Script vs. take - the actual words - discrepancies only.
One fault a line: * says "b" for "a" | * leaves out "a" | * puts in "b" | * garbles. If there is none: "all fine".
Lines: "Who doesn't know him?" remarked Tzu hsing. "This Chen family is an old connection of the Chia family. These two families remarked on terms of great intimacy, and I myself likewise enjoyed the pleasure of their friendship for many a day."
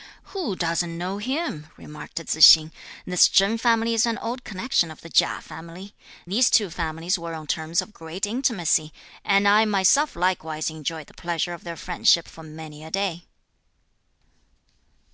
* says "were" for "remarked"